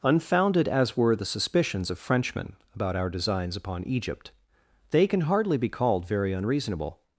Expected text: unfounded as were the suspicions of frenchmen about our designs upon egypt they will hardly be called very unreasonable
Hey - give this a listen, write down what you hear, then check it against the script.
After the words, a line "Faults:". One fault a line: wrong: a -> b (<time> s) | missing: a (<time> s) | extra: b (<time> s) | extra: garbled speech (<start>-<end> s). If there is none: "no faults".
unfounded as were the suspicions of frenchmen about our designs upon egypt they can hardly be called very unreasonable
Faults:
wrong: will -> can (5.1 s)